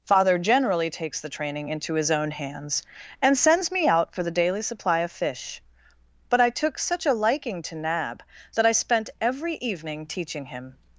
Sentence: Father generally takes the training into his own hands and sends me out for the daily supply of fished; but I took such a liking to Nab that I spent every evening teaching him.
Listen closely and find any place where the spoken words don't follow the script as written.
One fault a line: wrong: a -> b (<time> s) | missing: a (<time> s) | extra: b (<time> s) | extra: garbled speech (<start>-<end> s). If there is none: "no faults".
wrong: fished -> fish (5.1 s)